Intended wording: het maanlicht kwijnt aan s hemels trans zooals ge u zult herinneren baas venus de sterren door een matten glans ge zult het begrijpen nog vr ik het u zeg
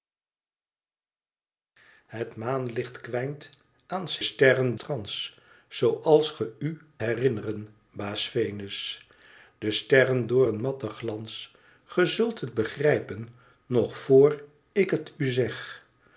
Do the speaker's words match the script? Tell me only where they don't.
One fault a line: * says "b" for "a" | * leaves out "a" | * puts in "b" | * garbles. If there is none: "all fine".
* says "sterren" for "hemels"
* leaves out "zult"